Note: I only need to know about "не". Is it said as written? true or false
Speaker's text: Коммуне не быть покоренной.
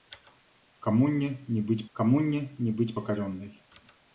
true